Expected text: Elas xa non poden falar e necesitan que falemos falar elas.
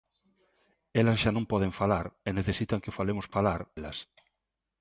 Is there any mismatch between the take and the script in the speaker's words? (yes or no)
no